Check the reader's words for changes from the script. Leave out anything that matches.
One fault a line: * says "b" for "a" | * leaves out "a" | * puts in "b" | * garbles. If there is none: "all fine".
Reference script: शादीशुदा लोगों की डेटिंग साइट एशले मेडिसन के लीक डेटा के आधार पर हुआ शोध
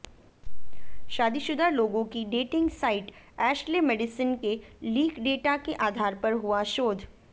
all fine